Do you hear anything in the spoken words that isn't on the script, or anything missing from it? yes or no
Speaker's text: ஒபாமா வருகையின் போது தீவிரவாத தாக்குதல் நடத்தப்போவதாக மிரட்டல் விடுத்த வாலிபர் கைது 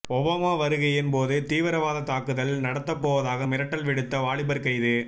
no